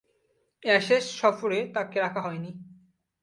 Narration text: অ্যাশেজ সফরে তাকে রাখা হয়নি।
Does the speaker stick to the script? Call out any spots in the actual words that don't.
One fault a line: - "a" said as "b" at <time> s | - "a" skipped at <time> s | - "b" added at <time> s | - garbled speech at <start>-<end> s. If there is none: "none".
none